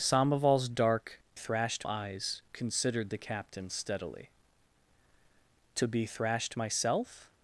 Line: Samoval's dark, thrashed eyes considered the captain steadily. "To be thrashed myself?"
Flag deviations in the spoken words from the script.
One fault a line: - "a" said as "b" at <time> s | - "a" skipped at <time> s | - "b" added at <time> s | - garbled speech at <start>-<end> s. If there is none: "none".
none